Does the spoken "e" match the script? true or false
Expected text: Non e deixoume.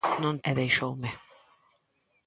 true